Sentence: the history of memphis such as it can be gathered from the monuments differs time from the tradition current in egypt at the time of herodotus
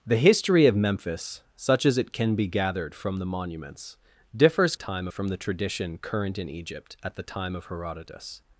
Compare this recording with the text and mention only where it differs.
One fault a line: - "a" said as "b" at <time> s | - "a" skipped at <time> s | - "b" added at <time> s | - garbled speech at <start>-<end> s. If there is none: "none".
none